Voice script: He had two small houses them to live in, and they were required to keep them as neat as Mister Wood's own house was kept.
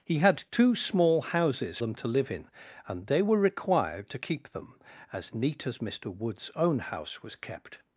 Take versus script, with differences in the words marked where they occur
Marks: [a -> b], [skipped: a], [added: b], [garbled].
He had two small houses them to live in, and they were required to keep them as neat as Mister Wood's own house was kept.